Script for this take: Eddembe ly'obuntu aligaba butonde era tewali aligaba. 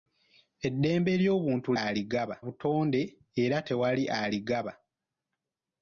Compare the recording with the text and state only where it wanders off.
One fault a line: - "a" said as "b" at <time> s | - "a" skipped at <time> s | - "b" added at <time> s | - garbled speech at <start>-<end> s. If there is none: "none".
none